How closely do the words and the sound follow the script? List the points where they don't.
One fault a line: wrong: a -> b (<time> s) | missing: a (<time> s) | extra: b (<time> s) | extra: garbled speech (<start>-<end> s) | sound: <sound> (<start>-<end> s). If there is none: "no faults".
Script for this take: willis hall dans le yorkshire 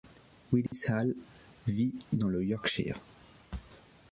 sound: dropout (0.7-0.7 s)
extra: vit (1.7 s)